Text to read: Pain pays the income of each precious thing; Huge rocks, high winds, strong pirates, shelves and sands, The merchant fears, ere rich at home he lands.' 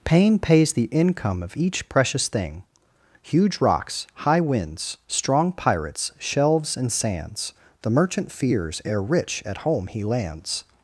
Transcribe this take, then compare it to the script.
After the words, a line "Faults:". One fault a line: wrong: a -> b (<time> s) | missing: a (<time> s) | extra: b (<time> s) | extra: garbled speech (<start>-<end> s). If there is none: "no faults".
Pain pays the income of each precious thing; Huge rocks, high winds, strong pirates, shelves and sands, The merchant fears, ere rich at home he lands.'
Faults:
no faults